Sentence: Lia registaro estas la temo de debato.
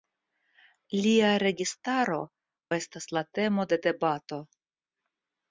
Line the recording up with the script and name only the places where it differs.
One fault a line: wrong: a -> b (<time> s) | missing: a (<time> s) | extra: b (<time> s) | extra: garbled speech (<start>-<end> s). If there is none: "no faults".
no faults